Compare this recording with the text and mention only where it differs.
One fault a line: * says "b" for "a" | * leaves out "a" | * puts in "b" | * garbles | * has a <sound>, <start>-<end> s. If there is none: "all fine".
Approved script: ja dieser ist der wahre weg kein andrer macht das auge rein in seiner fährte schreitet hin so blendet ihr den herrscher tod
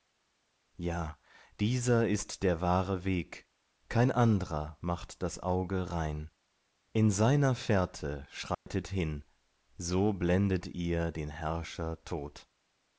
* has a dropout, 8.5-8.7 s